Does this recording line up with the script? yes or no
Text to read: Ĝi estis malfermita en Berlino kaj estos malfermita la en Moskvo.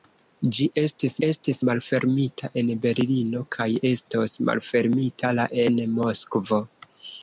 no